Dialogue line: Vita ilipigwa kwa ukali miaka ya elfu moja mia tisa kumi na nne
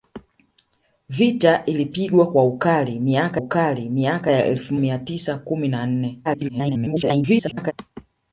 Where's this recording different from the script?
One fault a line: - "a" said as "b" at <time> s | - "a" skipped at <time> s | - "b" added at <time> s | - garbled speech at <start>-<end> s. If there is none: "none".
- "ukali miaka" added at 3.3 s
- "moja" skipped at 4.7 s
- garbled speech at 6.2-7.7 s